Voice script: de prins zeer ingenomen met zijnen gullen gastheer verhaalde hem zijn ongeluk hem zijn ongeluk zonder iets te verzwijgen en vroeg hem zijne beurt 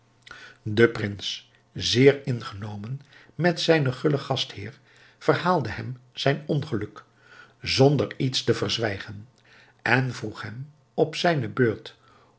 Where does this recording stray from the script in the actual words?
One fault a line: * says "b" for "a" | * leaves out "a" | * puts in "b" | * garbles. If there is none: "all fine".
* leaves out "hem zijn ongeluk"
* puts in "op"